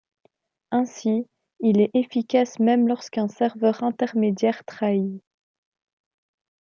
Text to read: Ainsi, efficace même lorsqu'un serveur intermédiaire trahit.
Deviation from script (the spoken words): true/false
true